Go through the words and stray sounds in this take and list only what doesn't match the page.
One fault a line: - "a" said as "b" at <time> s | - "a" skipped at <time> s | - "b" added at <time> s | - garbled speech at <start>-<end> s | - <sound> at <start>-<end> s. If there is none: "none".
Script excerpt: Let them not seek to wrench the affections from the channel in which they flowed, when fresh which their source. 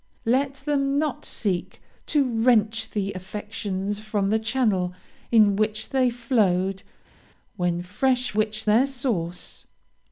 none